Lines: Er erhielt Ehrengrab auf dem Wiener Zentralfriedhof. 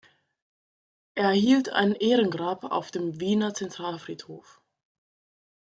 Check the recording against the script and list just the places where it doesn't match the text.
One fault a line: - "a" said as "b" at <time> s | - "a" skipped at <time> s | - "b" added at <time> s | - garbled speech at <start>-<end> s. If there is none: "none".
- "ein" added at 1.7 s